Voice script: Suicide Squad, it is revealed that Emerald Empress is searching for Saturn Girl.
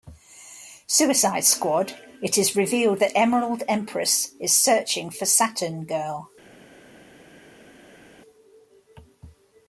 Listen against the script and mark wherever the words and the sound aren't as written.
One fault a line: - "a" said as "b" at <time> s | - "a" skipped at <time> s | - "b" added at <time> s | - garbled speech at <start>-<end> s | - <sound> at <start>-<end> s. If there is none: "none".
none